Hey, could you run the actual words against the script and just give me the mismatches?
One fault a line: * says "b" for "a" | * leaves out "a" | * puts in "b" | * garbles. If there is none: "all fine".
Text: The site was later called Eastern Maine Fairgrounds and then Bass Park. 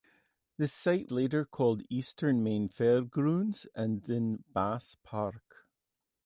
* leaves out "was"